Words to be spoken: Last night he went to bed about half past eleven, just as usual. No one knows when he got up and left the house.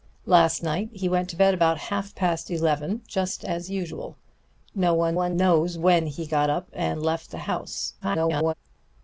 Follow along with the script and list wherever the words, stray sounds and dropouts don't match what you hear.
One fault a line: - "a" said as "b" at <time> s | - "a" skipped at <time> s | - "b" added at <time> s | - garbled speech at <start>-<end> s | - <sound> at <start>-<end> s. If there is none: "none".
- "one" added at 5.1 s
- garbled speech at 8.0-8.5 s